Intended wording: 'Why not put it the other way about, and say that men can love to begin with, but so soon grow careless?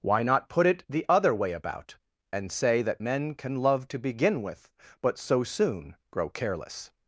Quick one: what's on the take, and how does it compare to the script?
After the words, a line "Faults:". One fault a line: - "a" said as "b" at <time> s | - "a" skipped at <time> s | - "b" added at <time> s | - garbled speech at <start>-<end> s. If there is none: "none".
'Why not put it the other way about, and say that men can love to begin with, but so soon grow careless?
Faults:
none